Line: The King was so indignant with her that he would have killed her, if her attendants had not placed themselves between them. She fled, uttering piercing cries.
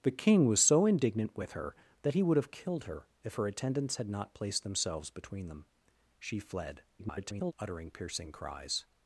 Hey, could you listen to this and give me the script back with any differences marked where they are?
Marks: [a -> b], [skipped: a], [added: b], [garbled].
The King was so indignant with her that he would have killed her, if her attendants had not placed themselves between them. She fled, [garbled] uttering piercing cries.